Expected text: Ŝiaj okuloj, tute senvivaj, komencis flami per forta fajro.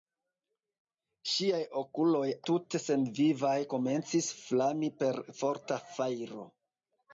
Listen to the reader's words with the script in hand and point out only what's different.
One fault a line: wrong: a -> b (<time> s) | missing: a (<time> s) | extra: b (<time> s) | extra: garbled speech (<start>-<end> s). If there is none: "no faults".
no faults